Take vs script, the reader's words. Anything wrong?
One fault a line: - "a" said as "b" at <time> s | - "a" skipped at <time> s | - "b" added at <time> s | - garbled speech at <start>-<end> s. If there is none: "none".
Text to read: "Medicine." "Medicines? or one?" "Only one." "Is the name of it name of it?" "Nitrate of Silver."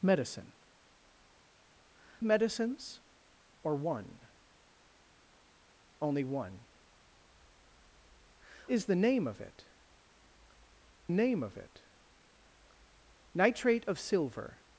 none